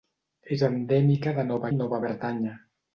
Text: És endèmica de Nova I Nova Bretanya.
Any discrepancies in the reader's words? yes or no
no